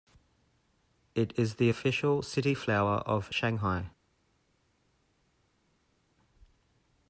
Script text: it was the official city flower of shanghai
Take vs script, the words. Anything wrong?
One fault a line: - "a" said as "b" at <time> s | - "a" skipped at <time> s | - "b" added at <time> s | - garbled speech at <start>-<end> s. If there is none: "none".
- "was" said as "is" at 1.4 s